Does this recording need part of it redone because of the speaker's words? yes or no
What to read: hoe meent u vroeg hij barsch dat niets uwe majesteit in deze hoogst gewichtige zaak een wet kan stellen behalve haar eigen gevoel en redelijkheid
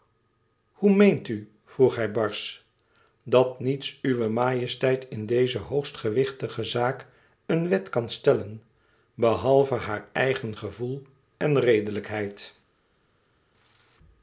no